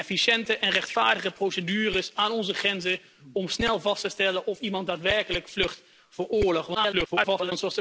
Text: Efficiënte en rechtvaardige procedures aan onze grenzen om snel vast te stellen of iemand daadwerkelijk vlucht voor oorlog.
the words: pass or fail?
fail